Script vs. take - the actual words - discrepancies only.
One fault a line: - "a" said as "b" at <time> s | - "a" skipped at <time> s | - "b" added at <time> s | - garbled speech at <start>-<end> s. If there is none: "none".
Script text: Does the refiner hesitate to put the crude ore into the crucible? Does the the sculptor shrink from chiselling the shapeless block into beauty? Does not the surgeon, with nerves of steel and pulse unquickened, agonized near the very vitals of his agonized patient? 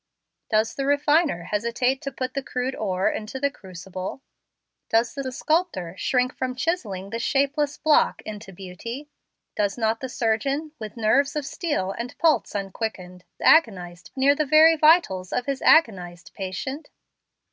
none